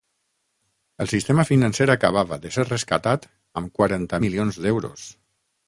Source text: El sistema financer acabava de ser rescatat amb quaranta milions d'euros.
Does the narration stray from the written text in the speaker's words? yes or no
no